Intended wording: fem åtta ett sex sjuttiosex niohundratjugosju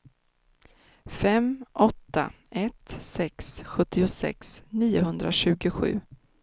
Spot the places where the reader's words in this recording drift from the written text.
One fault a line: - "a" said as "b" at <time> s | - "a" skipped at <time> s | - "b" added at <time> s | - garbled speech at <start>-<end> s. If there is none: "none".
none